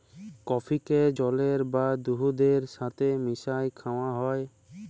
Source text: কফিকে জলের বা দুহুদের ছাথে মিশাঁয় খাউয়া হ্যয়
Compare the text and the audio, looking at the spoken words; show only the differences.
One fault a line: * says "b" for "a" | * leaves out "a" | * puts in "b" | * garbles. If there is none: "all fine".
all fine